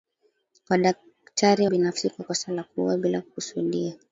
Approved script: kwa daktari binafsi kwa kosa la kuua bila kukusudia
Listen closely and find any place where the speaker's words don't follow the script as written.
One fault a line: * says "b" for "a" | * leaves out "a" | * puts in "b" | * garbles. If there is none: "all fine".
all fine